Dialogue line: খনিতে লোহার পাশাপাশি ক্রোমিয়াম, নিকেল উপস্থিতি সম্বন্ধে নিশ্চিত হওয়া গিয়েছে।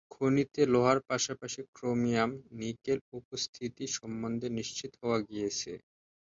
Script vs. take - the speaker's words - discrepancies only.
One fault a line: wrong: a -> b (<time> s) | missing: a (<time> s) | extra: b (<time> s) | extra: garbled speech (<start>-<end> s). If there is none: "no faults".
no faults